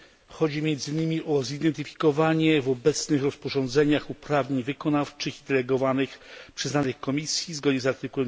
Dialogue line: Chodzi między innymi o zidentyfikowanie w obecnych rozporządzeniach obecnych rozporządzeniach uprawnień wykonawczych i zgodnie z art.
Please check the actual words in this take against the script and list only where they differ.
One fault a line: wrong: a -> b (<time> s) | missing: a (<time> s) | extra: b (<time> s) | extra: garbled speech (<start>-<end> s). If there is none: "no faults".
missing: obecnych rozporządzeniach (4.1 s)
extra: delegowanych przyznanych Komisji (5.5 s)